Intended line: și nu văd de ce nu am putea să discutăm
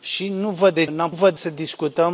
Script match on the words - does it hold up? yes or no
no